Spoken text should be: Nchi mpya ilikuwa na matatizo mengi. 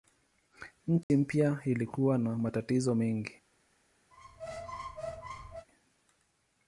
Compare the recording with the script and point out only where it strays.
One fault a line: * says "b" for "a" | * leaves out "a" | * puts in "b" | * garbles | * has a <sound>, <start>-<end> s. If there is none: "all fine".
* has a dropout, 1.0-1.1 s
* has a squeak, 4.1-5.7 s